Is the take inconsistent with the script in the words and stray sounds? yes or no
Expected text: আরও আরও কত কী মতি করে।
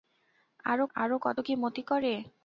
no